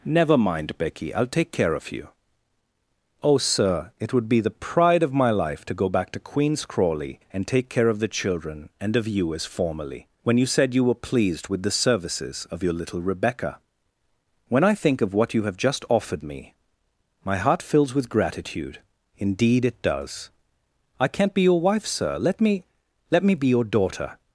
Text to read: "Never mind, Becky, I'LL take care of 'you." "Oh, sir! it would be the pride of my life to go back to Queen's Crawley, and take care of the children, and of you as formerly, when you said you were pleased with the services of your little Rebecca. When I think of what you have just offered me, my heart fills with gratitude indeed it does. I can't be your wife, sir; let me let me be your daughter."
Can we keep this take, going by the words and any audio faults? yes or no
yes